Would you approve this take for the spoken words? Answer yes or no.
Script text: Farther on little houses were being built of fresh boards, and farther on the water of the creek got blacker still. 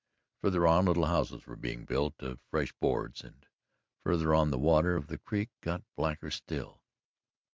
yes